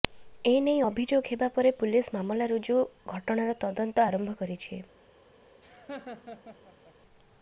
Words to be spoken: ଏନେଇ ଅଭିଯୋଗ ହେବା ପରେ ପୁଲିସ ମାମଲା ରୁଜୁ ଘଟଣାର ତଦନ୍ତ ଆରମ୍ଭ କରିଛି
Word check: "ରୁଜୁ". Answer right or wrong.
right